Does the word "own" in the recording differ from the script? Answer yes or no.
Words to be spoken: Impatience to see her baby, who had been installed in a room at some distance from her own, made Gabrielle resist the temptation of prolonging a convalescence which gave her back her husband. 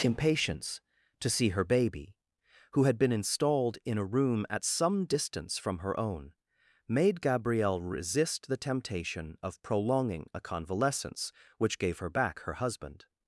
no